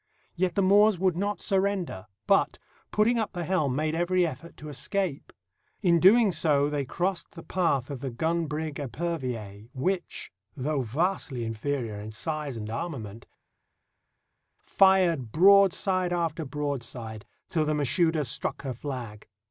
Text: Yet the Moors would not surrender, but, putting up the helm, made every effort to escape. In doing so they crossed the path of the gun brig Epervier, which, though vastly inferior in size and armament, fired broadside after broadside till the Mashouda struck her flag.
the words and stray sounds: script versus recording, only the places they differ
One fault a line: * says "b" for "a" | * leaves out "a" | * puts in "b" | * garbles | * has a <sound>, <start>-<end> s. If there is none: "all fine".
all fine